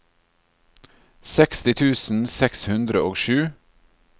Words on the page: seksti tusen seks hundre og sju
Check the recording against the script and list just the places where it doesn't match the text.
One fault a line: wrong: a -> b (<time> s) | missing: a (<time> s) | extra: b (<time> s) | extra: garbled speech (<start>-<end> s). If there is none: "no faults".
no faults